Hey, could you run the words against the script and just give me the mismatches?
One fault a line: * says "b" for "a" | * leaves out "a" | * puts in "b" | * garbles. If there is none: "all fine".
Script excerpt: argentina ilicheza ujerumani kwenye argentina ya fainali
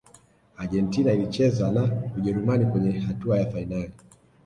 * puts in "na"
* says "hatua" for "argentina"